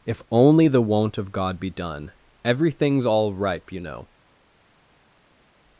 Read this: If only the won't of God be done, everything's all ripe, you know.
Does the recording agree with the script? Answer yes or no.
yes